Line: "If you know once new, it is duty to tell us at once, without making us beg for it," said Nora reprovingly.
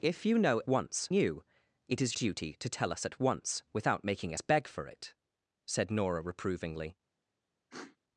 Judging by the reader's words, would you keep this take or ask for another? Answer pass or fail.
pass